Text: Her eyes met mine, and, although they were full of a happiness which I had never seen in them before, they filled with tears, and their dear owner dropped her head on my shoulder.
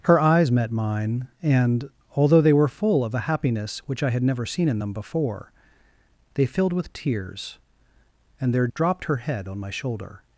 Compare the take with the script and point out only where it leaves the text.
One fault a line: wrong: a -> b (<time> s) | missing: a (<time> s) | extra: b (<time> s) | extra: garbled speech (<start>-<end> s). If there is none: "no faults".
missing: dear owner (8.7 s)